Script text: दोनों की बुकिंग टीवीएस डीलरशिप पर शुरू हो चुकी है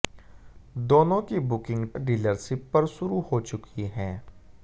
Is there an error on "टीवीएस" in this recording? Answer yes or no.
yes